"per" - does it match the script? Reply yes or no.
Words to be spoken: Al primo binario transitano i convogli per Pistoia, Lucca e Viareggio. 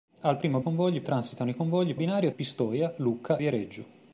no